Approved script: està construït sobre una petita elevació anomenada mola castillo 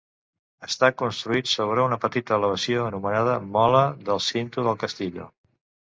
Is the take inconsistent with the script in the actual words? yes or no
yes